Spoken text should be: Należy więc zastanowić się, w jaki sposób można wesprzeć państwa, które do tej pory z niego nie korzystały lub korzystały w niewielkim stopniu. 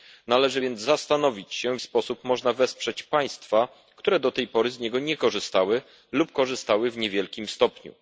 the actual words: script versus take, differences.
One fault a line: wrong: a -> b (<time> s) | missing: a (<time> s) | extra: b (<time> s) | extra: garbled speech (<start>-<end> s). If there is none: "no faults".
missing: jaki (1.8 s)